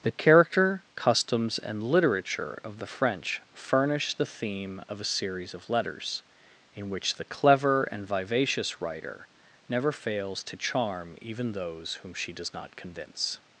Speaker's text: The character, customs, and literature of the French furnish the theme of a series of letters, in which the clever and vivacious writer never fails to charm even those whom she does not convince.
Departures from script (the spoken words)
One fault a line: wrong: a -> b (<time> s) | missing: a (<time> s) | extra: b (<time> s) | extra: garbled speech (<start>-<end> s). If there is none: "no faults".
no faults